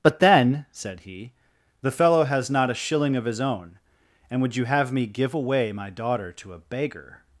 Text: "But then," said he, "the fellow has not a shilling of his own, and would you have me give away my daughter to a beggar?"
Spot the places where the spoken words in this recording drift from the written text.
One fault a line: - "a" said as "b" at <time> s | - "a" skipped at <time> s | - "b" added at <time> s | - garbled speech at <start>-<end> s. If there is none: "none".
none